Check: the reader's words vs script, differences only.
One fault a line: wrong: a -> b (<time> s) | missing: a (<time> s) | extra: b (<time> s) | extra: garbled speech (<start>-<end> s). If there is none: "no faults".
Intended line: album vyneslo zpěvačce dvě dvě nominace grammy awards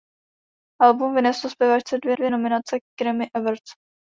no faults